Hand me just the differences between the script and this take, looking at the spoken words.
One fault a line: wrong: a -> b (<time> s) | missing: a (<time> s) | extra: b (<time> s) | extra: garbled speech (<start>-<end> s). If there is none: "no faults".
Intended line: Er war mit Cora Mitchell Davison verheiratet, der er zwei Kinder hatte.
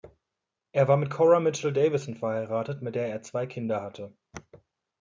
extra: mit (2.8 s)